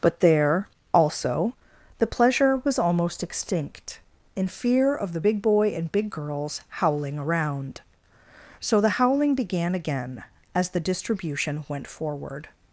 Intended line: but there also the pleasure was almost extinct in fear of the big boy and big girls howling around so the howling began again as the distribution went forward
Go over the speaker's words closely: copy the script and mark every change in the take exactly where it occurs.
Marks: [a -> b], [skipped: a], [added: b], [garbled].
but there also the pleasure was almost extinct in fear of the big boy and big girls howling around so the howling began again as the distribution went forward